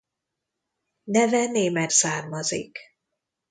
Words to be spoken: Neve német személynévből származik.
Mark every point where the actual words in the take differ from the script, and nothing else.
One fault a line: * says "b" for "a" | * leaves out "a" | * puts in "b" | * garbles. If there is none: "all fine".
* leaves out "személynévből"